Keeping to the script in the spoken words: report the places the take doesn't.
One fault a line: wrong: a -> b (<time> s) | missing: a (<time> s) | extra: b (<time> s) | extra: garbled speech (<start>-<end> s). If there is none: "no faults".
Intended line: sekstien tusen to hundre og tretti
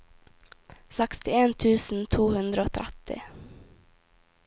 no faults